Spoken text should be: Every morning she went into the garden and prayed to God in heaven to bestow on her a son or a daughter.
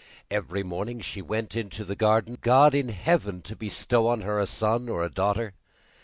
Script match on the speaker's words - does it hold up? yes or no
no